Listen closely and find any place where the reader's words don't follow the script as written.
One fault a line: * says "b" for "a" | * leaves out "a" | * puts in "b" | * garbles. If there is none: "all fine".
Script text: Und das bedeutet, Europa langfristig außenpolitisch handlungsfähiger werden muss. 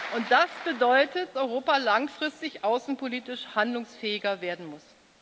all fine